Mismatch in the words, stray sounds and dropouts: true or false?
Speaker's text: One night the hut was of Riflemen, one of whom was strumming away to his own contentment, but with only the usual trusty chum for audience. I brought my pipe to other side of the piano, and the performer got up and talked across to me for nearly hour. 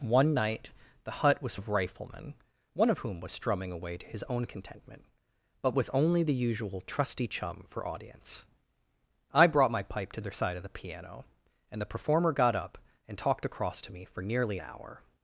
false